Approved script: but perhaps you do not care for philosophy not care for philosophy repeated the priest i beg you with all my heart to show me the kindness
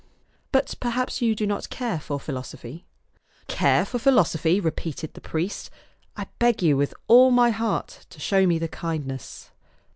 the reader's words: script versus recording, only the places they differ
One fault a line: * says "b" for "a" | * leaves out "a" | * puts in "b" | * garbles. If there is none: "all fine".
* leaves out "not"